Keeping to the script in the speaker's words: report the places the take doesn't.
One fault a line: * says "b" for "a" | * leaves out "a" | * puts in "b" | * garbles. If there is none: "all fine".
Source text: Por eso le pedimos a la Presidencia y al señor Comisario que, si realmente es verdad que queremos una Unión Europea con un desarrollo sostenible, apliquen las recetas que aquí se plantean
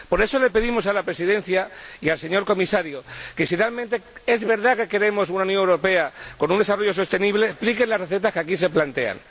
all fine